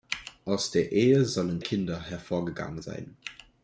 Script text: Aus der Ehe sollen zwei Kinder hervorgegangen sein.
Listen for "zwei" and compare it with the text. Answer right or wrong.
wrong